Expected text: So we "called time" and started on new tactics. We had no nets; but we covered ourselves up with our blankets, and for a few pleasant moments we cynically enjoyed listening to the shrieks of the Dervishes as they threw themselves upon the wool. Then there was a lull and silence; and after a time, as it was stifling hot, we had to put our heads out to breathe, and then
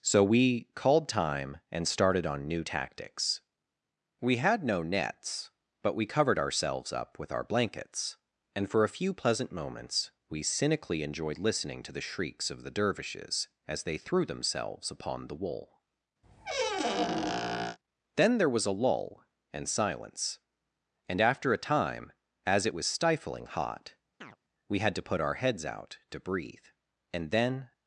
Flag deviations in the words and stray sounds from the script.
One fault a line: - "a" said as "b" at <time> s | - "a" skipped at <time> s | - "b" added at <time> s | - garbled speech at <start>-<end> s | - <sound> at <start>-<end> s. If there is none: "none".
- squeak at 16.2-17.8 s
- chirp at 24.2-24.4 s